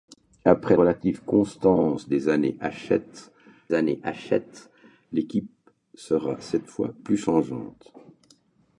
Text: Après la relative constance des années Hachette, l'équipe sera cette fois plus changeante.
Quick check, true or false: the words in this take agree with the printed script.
false